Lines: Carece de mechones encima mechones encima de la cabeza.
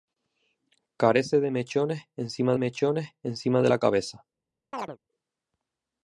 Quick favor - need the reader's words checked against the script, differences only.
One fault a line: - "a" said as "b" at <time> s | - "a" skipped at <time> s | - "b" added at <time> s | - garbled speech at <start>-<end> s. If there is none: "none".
none